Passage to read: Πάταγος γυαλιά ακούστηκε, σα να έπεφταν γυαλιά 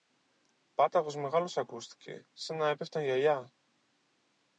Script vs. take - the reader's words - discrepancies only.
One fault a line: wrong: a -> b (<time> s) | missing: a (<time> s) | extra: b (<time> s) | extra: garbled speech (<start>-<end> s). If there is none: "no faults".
wrong: γυαλιά -> μεγάλος (1.1 s)